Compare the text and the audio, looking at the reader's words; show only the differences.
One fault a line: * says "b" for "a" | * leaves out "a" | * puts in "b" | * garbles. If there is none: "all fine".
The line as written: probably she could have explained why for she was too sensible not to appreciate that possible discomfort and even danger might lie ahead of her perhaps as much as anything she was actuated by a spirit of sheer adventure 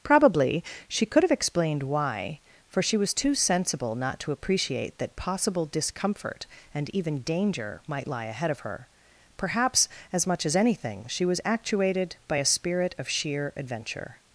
all fine